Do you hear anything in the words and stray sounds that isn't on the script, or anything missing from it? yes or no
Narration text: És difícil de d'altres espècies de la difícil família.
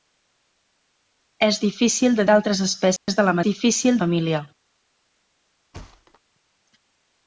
yes